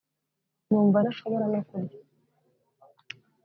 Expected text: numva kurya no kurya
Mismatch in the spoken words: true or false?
true